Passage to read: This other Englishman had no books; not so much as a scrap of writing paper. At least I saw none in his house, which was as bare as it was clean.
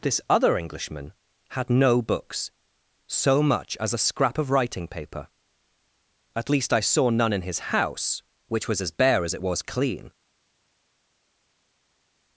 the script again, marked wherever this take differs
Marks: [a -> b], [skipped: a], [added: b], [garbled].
This other Englishman had no books; [skipped: not] so much as a scrap of writing paper. At least I saw none in his house, which was as bare as it was clean.